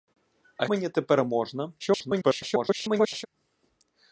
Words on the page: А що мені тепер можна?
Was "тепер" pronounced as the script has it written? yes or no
yes